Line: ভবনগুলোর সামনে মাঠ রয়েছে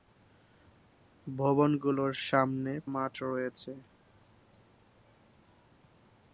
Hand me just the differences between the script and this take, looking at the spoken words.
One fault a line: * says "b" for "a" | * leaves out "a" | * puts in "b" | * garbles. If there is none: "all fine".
all fine